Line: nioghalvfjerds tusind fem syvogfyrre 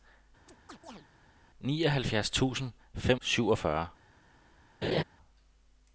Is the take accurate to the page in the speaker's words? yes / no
yes